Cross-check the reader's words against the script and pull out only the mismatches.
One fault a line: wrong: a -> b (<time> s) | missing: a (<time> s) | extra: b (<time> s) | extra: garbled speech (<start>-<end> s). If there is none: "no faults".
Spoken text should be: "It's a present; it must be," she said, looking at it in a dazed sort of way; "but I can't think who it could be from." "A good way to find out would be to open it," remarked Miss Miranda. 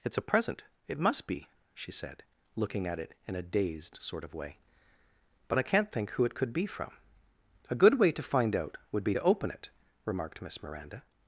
no faults